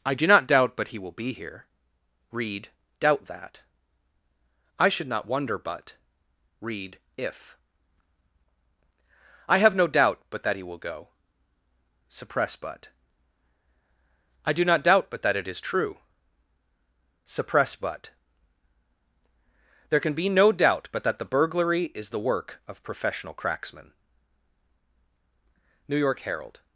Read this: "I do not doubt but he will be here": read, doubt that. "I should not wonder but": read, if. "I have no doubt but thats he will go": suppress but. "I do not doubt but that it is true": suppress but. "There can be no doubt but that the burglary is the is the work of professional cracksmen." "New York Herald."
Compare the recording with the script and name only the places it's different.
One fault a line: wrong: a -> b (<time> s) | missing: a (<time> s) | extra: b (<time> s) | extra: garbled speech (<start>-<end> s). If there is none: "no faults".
wrong: thats -> that (10.4 s)
missing: is the (22.2 s)